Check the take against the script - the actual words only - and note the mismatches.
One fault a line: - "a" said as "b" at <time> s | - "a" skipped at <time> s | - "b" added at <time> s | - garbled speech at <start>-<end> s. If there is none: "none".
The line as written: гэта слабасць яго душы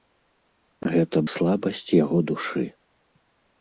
none